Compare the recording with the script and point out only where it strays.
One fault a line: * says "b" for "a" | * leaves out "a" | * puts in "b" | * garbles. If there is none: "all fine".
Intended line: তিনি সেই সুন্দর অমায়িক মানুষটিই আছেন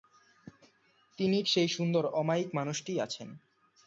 all fine